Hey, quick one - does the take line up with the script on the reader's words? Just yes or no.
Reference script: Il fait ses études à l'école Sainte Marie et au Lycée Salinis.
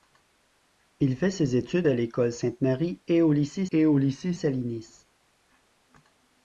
no